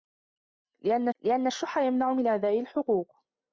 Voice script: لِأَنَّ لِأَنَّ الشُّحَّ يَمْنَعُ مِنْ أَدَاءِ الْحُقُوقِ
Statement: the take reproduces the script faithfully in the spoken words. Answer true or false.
true